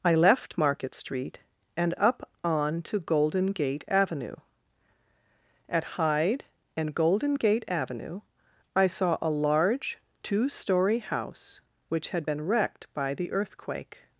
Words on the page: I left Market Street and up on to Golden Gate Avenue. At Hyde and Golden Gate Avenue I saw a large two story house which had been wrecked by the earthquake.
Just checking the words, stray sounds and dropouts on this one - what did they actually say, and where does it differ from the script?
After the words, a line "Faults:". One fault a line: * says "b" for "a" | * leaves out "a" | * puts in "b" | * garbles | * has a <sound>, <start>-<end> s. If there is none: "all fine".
I left Market Street and up on to Golden Gate Avenue. At Hyde and Golden Gate Avenue I saw a large two story house which had been wrecked by the earthquake.
Faults:
all fine